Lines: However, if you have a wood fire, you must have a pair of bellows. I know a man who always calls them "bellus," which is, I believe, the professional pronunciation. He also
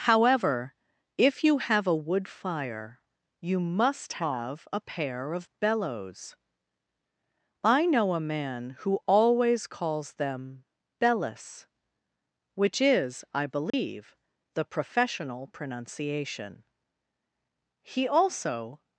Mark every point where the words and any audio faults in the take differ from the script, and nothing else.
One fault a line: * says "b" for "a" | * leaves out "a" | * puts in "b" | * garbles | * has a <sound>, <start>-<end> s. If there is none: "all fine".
* has a dropout, 13.7-13.7 s